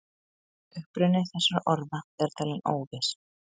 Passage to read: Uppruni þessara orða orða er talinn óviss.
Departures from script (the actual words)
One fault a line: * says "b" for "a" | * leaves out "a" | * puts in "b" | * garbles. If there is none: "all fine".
* leaves out "orða"